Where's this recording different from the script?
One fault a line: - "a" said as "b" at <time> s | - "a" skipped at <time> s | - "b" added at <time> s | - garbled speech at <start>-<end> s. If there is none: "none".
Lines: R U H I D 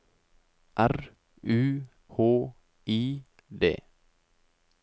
none